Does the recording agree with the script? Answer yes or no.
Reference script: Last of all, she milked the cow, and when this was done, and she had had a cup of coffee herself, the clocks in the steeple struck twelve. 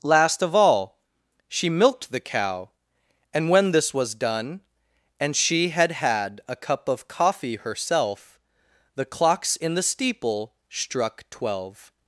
yes